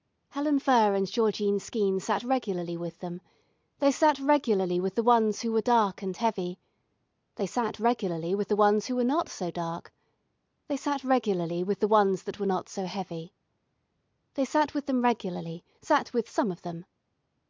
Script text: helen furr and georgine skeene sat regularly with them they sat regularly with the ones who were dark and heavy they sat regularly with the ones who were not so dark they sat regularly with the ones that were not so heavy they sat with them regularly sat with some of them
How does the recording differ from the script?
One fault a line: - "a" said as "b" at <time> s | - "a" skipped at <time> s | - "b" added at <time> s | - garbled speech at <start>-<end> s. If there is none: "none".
none